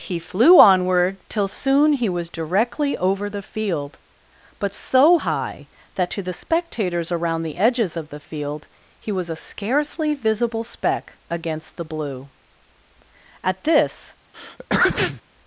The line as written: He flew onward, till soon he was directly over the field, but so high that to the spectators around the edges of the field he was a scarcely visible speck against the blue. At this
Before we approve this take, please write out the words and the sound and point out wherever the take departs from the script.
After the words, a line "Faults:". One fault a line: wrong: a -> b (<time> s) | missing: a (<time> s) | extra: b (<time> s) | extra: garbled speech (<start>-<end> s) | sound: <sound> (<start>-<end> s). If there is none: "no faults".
He flew onward, till soon he was directly over the field, but so high that to the spectators around the edges of the field he was a scarcely visible speck against the blue. At this
Faults:
sound: sneeze (14.3-15.2 s)